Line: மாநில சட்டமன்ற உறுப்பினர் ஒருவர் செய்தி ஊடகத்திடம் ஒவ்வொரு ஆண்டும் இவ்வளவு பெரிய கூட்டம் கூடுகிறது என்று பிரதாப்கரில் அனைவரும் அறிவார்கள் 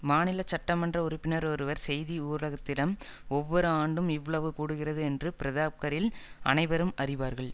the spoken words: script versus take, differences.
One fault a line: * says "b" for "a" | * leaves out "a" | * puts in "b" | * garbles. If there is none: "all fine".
* leaves out "பெரிய கூட்டம்"